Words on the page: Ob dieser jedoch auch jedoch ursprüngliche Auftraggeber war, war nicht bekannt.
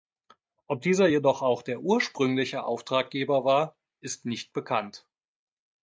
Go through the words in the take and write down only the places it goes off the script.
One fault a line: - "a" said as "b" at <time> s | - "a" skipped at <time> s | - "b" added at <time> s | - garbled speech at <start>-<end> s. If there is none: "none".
- "jedoch" said as "der" at 1.6 s
- "war" said as "ist" at 4.0 s